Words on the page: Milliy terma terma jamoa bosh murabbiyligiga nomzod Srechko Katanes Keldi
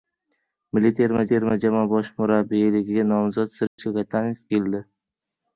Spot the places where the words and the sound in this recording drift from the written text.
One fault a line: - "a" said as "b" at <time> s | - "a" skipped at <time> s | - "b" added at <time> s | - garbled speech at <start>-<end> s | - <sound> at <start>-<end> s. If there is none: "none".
- dropout at 3.7-3.8 s